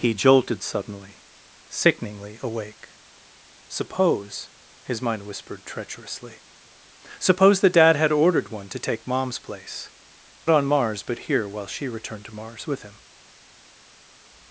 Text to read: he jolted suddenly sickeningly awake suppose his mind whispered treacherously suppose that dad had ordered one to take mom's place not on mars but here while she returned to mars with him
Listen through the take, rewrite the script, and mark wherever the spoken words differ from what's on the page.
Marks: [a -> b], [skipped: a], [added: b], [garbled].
he jolted suddenly sickeningly awake suppose his mind whispered treacherously suppose that dad had ordered one to take mom's place [skipped: not] on mars but here while she returned to mars with him